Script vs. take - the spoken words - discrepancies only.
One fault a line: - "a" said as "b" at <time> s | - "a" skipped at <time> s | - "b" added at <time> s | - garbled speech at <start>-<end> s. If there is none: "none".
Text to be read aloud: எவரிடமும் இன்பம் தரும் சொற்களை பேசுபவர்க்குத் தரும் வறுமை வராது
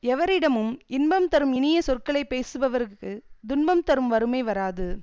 - "இனிய" added at 1.5 s
- "துன்பம்" added at 3.5 s